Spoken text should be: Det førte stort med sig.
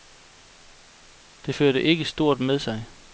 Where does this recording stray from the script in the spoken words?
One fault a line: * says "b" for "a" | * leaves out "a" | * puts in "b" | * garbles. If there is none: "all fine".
* puts in "ikke"